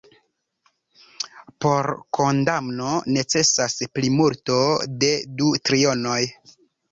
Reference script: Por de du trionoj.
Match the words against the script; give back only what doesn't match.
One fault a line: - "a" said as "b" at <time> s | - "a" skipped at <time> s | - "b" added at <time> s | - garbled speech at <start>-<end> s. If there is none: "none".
- "kondamno necesas plimulto" added at 2.2 s